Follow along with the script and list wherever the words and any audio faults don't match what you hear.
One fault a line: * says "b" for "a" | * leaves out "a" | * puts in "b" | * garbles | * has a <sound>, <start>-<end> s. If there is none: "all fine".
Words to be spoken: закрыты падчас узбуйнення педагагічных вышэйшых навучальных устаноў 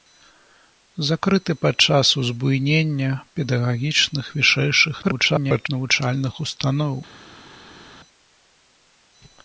* garbles